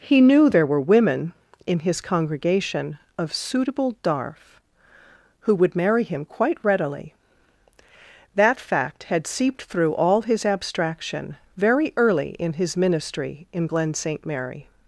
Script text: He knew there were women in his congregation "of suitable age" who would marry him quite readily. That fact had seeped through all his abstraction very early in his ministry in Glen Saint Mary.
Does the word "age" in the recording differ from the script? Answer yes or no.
yes